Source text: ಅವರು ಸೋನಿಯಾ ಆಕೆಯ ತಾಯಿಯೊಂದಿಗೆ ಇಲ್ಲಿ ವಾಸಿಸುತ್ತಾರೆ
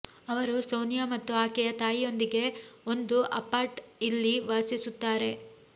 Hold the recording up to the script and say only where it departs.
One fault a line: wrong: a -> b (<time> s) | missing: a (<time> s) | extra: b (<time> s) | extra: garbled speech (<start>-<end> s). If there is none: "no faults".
extra: ಮತ್ತು (1.1 s)
extra: ಒಂದು ಅಪಾರ್ಟ್ (2.9 s)